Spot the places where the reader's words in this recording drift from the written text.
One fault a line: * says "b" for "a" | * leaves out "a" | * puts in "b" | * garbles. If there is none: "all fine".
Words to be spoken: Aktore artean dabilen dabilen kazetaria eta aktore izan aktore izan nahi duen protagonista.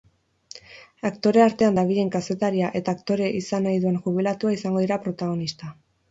* leaves out "dabilen"
* says "nahi duen jubilatua izango dira" for "aktore izan nahi duen"